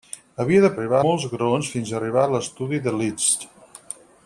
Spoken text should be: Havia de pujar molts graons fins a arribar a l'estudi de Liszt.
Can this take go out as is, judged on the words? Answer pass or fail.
fail